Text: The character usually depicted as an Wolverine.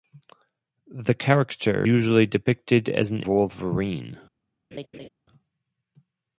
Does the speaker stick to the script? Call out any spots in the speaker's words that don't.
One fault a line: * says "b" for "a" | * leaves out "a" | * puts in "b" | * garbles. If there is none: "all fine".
all fine